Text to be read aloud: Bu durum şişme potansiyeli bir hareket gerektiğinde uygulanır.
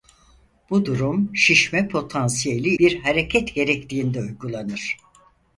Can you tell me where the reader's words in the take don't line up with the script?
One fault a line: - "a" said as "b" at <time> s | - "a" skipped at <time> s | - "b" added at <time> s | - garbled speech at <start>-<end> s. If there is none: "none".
none